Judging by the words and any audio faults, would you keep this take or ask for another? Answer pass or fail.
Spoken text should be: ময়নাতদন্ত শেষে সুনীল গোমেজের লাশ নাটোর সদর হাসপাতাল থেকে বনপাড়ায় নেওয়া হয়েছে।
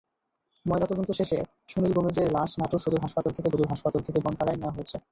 fail